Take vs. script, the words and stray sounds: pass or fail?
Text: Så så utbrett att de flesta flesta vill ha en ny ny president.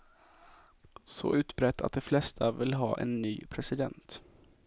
fail